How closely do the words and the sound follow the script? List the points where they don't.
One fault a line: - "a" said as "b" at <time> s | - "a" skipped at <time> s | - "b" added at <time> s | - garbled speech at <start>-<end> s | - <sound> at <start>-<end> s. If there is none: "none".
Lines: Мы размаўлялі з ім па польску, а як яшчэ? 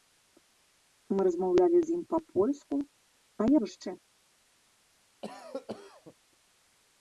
- cough at 5.2-6.1 s